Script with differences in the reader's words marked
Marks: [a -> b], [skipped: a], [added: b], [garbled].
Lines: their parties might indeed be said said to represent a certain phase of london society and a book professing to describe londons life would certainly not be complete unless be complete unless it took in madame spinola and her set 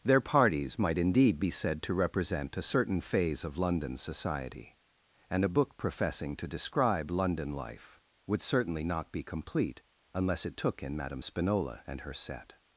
their parties might indeed be said [skipped: said] to represent a certain phase of london society and a book professing to describe [londons -> london] life would certainly not be complete unless [skipped: be complete unless] it took in madame spinola and her set